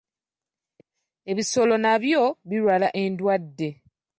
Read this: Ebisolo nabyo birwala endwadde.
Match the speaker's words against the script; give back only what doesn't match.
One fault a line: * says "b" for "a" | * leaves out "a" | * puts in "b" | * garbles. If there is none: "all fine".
all fine